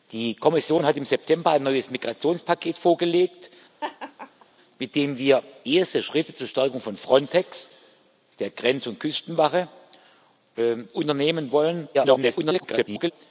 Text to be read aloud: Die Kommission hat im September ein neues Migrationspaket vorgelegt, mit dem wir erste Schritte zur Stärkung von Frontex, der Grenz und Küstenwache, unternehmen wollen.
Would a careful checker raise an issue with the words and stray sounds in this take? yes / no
yes